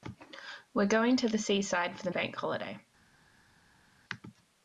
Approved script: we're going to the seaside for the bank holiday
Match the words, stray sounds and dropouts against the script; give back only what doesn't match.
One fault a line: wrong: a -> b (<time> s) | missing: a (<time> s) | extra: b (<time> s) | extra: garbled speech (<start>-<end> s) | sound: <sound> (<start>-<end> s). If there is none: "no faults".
no faults